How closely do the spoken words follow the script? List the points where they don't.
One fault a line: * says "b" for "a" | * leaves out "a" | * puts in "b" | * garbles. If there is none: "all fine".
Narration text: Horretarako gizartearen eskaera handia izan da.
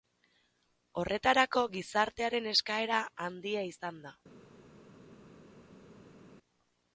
all fine